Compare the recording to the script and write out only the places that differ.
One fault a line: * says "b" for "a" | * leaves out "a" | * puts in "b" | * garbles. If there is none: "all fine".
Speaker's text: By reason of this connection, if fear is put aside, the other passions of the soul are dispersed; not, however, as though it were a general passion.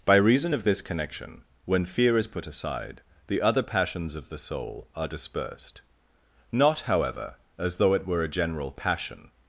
* says "when" for "if"